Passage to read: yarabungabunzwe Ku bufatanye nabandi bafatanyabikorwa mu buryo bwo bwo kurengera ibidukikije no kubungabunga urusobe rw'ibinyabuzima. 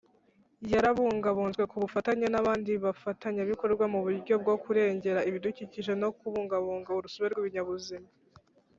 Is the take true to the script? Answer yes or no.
no